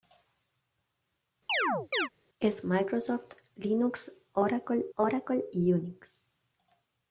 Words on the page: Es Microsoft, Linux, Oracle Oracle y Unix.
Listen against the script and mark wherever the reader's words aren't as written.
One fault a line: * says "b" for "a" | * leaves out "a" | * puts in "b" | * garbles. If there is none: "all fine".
all fine